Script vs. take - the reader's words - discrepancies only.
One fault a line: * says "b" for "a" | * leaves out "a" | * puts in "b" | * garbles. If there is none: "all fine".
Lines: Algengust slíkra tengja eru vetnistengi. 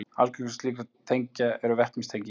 all fine